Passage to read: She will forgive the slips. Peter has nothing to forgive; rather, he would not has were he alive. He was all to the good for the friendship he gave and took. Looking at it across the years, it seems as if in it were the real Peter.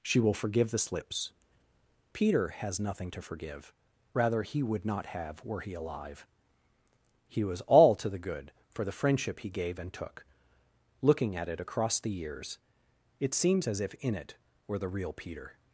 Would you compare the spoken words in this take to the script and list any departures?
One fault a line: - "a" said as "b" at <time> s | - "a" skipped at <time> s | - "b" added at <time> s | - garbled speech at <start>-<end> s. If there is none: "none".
- "has" said as "have" at 5.1 s